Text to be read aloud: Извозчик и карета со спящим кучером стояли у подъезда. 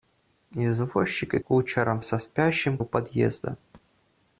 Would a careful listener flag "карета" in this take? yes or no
yes